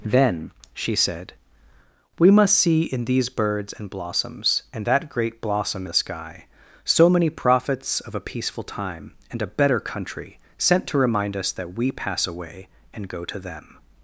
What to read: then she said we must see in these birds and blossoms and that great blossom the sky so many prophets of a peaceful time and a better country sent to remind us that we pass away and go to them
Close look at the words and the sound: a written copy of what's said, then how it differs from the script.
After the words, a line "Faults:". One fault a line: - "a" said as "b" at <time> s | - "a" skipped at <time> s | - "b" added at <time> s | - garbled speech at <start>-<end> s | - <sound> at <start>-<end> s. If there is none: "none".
then she said we must see in these birds and blossoms and that great blossom the sky so many prophets of a peaceful time and a better country sent to remind us that we pass away and go to them
Faults:
none